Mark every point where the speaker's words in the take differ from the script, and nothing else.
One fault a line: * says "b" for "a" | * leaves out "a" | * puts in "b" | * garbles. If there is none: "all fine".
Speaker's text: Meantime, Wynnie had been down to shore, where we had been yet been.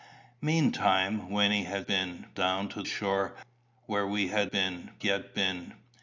all fine